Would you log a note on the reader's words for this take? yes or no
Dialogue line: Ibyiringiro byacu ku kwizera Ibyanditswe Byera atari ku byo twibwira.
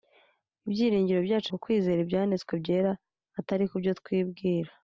no